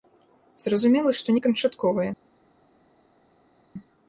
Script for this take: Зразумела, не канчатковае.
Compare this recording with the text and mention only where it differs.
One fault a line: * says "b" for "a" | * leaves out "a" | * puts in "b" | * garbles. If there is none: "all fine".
* puts in "што"